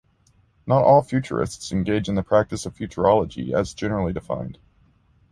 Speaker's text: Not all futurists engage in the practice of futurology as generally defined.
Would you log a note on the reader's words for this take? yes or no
no